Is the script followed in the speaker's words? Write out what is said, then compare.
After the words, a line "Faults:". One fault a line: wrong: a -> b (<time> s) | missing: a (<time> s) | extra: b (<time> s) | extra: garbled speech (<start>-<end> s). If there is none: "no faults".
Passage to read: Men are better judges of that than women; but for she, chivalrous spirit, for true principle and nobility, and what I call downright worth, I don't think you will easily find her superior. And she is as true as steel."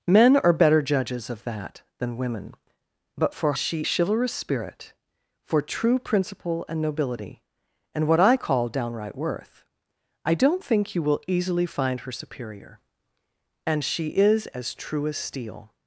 Men are better judges of that than women; but for she, chivalrous spirit, for true principle and nobility, and what I call downright worth, I don't think you will easily find her superior. And she is as true as steel."
Faults:
no faults